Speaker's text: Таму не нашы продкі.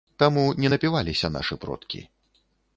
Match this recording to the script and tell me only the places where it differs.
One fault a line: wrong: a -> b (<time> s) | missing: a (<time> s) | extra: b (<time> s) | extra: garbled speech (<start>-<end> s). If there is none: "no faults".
extra: напіваліся (0.7 s)